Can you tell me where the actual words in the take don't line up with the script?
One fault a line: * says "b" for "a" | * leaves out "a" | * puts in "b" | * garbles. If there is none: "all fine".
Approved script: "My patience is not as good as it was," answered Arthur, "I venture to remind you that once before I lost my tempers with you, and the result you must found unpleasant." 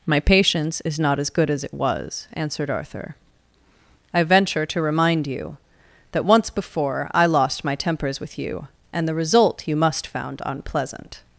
all fine